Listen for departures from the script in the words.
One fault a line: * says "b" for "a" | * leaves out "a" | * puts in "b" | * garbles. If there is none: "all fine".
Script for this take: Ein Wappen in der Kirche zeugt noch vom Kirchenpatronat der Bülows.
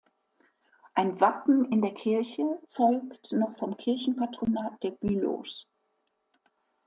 all fine